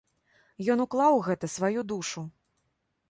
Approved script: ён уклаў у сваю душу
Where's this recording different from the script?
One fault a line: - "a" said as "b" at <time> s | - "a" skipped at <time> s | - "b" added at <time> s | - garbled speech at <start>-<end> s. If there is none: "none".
- "гэта" added at 1.3 s